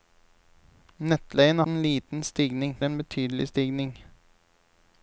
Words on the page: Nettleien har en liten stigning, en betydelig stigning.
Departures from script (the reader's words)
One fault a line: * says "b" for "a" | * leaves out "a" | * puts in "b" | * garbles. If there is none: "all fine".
all fine